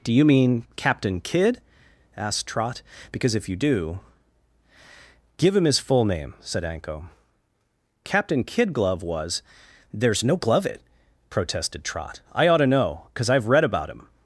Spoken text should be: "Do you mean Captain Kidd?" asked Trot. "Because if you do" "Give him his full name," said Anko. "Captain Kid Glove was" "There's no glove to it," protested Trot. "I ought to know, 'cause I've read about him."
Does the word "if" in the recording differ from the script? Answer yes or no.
no